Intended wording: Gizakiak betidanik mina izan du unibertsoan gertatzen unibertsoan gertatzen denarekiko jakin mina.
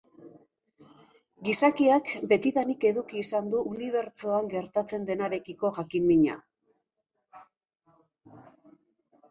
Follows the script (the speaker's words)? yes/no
no